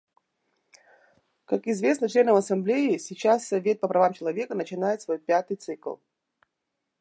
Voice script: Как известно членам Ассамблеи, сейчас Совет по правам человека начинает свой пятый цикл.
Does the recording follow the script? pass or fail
pass